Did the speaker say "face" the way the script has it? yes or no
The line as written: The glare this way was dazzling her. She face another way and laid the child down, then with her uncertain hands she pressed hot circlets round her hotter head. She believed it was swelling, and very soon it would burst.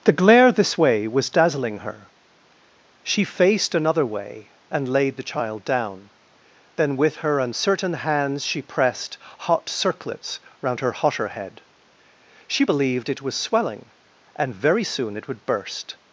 no